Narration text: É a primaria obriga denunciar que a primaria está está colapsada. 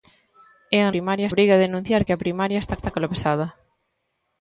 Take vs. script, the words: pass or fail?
pass